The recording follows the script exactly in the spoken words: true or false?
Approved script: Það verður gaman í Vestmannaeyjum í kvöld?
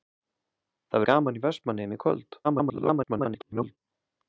false